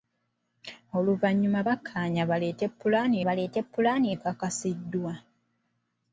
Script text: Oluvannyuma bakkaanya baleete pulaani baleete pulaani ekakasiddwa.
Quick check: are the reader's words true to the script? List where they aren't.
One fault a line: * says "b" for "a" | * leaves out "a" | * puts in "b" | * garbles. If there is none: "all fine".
all fine